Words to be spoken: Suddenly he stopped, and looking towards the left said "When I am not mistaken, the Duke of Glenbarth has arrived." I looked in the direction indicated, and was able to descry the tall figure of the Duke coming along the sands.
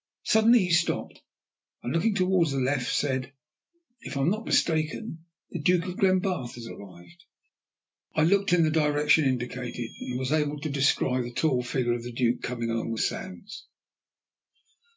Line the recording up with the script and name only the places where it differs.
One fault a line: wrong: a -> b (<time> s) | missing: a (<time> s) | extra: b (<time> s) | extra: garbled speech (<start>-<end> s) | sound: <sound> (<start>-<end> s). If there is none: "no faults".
wrong: When -> If (4.0 s)